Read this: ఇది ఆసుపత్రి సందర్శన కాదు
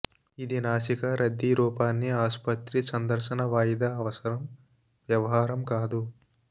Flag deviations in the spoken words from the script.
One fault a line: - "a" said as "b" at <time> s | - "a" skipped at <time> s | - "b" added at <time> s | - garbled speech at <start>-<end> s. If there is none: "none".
- "నాసికా రద్దీ రూపాన్ని" added at 0.6 s
- "వాయిదా అవసరం వ్యవహారం" added at 3.5 s